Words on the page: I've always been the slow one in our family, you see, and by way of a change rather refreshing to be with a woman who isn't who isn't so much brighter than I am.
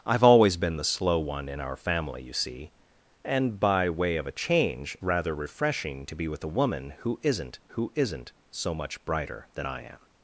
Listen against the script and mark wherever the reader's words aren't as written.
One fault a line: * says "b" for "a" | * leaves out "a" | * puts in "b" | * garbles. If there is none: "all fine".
all fine